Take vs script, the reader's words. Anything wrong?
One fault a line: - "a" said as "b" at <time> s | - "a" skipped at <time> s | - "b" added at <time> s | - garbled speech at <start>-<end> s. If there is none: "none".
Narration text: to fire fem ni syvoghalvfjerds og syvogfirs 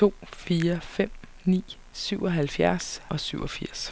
none